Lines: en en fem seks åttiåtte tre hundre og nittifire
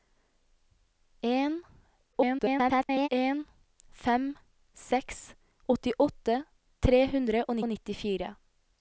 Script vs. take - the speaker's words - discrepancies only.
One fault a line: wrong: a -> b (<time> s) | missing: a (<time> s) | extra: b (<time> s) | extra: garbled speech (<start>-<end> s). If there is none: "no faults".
extra: garbled speech (2.1-3.1 s)
extra: og (7.6 s)